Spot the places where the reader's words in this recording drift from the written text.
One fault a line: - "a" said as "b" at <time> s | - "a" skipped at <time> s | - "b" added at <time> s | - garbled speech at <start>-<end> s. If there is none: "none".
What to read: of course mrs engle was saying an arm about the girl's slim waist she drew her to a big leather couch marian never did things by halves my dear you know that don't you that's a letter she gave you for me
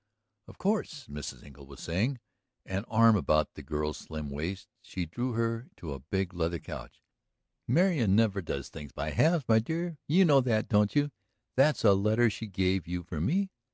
- "did" said as "does" at 8.4 s